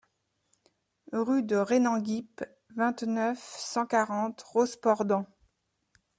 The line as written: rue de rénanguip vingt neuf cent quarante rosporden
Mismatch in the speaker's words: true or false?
false